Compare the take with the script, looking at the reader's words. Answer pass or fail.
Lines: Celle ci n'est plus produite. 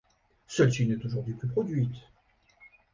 fail